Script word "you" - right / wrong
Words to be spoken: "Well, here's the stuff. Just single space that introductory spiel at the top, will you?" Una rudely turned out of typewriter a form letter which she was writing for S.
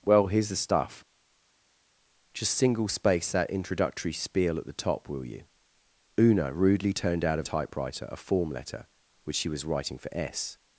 right